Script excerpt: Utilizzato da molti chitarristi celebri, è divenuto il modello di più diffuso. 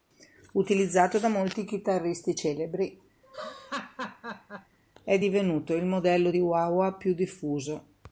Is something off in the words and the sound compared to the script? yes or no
yes